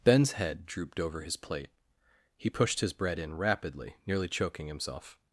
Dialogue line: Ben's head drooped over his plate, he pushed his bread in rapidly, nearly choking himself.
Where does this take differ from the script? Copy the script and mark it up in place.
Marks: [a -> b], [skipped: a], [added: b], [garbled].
Ben's head drooped over his plate, he pushed his bread in rapidly, nearly choking himself.